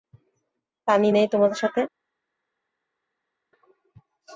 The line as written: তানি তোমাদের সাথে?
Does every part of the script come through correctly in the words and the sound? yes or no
no